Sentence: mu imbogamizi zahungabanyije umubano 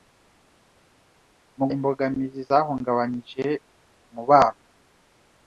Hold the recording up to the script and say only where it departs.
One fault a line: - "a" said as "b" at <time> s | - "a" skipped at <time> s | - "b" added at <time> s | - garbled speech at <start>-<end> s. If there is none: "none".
none